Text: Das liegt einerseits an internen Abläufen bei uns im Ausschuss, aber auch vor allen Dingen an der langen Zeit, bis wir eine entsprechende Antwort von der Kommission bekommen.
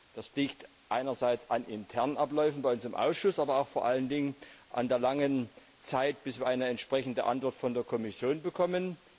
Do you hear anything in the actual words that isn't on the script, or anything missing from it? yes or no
no